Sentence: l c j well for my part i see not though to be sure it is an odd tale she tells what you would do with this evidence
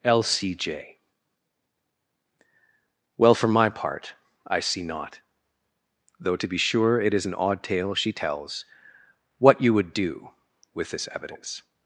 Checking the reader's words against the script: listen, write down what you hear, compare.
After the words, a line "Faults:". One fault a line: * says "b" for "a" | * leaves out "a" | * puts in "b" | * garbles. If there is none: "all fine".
l c j well for my part i see not though to be sure it is an odd tale she tells what you would do with this evidence
Faults:
all fine